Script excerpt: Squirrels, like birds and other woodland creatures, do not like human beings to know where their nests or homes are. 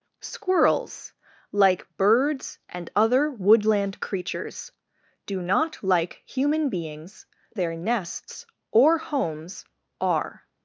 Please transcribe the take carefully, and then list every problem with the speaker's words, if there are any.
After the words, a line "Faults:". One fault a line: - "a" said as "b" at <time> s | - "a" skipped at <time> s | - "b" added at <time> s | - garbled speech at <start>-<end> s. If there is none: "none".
Squirrels, like birds and other woodland creatures, do not like human beings their nests or homes are.
Faults:
- "to know where" skipped at 7.3 s